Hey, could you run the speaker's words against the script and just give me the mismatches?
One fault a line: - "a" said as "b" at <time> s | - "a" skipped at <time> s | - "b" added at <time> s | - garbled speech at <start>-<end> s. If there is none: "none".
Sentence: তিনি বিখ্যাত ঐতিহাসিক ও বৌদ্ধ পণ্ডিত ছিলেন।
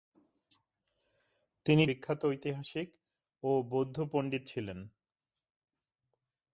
none